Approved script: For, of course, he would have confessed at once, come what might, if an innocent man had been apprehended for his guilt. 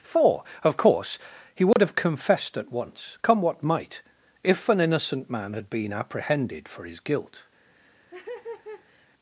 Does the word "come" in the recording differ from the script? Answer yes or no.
no